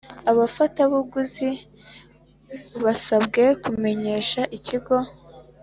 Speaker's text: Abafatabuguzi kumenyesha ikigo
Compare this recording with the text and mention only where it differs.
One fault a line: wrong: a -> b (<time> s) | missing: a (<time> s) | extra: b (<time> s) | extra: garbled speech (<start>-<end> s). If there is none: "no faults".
extra: basabwe (2.8 s)